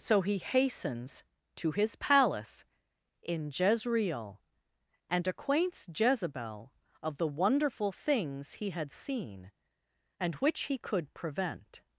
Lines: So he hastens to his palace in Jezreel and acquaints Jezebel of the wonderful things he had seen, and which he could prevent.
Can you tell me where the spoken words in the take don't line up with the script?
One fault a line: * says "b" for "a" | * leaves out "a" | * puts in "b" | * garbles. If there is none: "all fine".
all fine